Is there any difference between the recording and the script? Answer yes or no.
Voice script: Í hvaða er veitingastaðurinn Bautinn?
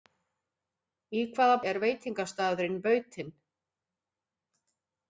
no